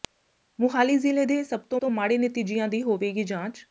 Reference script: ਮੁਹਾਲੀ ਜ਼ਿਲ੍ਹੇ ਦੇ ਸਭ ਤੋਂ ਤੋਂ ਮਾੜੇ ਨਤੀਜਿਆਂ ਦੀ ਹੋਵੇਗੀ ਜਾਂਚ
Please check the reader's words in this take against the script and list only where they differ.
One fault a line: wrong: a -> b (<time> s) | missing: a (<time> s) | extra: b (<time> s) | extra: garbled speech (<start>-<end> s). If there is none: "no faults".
no faults